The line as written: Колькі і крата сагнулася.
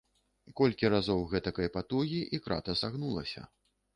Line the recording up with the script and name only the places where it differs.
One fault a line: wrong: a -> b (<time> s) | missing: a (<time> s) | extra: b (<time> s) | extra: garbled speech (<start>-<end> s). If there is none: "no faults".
extra: разоў гэтакай патугі (0.9 s)